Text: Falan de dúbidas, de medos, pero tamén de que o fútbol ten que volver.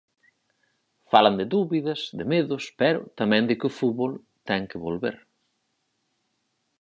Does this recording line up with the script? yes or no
yes